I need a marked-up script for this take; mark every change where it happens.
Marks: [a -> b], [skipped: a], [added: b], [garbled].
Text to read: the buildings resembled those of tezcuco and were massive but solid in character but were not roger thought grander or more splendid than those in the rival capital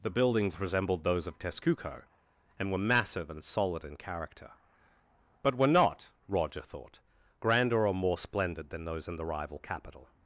the buildings resembled those of tezcuco and were massive [but -> and] solid in character but were not roger thought grander or more splendid than those in the rival capital